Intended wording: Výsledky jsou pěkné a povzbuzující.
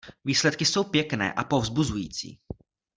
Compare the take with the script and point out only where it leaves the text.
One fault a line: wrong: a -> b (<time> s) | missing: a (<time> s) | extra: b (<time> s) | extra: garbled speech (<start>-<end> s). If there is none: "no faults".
no faults